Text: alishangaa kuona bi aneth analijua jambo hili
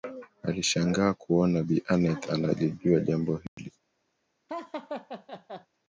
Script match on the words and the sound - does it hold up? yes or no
no